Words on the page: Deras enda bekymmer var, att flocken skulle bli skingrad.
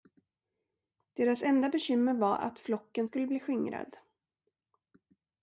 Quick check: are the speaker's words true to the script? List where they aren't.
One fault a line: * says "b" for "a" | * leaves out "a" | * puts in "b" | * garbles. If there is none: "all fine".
all fine